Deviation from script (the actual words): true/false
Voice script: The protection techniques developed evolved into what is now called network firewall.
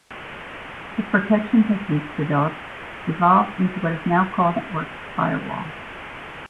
false